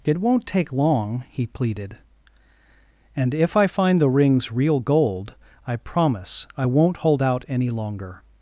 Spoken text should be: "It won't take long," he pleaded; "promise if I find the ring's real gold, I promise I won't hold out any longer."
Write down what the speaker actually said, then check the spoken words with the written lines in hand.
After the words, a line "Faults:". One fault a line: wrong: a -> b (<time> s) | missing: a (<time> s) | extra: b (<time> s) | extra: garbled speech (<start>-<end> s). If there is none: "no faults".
"It won't take long," he pleaded; "and if I find the ring's real gold, I promise I won't hold out any longer."
Faults:
wrong: promise -> and (3.1 s)